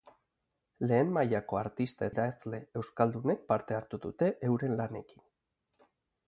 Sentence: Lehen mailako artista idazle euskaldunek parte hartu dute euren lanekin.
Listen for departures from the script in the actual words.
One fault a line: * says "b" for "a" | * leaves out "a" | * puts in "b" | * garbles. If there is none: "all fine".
all fine